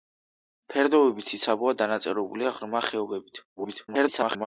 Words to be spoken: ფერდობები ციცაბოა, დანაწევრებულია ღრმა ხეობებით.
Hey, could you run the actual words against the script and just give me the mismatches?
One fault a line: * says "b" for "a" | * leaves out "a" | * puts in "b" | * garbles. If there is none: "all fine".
* garbles